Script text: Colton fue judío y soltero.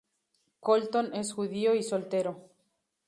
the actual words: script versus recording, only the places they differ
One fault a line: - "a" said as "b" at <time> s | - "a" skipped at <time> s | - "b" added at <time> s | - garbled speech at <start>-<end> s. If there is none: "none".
- "fue" said as "es" at 1.1 s